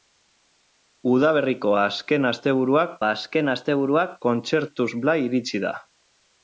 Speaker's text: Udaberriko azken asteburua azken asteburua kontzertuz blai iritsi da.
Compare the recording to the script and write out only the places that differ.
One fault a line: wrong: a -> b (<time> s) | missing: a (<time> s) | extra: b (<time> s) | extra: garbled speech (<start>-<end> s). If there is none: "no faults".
no faults